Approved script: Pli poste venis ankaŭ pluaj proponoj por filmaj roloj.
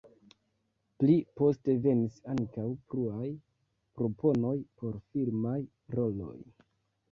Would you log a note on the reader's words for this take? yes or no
no